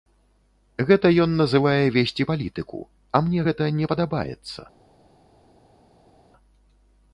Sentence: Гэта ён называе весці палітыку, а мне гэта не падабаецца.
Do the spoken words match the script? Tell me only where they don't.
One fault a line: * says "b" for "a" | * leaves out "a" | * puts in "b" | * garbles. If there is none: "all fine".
all fine